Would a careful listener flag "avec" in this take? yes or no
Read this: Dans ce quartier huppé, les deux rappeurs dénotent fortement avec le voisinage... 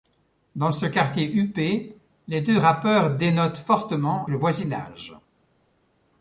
yes